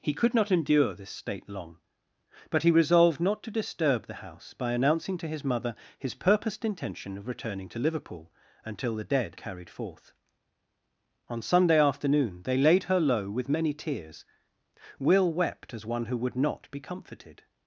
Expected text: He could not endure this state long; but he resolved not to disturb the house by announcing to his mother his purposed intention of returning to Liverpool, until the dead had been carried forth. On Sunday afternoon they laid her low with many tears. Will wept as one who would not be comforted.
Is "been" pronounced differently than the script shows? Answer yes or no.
yes